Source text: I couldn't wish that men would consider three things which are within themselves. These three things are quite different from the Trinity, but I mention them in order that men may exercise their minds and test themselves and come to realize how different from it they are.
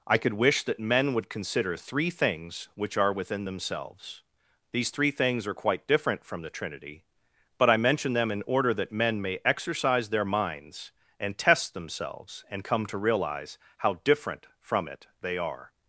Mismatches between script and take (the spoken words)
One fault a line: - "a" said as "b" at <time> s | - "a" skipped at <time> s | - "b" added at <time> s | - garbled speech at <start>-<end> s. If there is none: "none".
- "couldn't" said as "could" at 0.2 s